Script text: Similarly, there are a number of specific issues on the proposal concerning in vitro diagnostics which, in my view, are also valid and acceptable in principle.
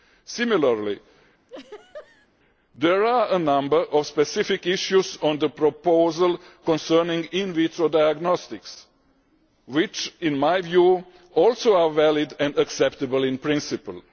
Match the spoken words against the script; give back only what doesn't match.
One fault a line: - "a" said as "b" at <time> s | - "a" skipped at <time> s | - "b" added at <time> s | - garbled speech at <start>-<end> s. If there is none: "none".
none